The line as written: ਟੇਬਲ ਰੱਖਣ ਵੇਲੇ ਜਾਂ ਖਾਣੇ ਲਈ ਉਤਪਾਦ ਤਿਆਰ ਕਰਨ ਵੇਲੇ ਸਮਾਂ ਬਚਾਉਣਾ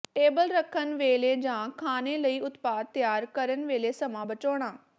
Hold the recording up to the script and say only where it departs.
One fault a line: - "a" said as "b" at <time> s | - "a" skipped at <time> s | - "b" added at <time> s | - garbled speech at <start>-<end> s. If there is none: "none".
none